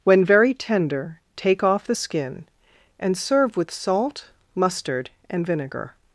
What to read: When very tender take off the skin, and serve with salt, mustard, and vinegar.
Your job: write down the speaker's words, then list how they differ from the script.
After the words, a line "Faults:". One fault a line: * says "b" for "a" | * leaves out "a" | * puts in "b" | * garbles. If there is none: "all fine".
When very tender take off the skin, and serve with salt, mustard, and vinegar.
Faults:
all fine